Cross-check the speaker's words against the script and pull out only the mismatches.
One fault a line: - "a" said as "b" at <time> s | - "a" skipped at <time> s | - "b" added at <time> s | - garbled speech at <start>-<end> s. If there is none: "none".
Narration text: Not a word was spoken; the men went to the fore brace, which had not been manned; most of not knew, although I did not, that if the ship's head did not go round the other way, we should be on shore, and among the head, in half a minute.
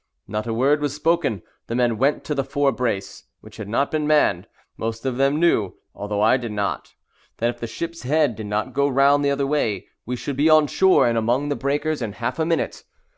- "not" said as "them" at 5.2 s
- "head" said as "breakers" at 11.5 s